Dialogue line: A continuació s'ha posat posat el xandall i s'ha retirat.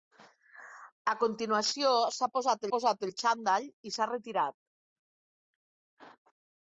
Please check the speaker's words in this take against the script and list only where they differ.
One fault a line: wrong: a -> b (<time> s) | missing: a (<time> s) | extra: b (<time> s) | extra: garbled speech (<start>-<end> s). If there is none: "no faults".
no faults